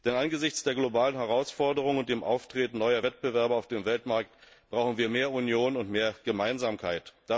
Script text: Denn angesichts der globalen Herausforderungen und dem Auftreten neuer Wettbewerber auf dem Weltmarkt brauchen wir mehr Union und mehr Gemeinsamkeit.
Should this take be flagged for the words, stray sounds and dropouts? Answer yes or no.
no